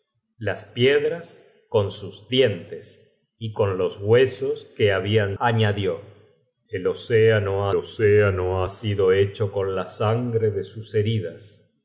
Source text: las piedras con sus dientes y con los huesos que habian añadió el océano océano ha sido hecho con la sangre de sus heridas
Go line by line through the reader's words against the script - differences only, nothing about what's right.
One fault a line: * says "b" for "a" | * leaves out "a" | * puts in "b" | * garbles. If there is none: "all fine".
all fine